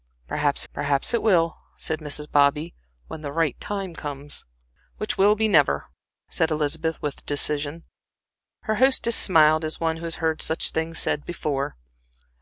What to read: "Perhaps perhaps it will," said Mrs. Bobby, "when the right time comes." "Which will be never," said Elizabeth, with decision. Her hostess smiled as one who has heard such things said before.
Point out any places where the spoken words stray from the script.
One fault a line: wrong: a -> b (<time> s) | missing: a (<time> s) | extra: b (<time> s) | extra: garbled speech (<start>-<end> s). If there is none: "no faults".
no faults